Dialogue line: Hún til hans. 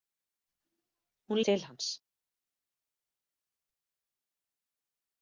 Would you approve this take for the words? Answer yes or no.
yes